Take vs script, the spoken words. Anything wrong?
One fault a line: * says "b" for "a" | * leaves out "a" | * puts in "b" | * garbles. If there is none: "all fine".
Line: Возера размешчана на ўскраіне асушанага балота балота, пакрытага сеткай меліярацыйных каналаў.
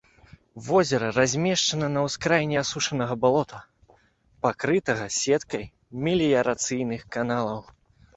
* leaves out "балота"